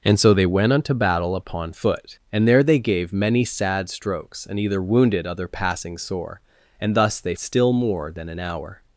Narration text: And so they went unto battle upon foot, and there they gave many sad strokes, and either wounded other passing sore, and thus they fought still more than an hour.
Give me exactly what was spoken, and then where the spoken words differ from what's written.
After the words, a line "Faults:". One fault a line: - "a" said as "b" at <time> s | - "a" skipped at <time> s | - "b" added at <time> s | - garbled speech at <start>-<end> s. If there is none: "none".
And so they went unto battle upon foot, and there they gave many sad strokes, and either wounded other passing sore, and thus they still more than an hour.
Faults:
- "fought" skipped at 7.3 s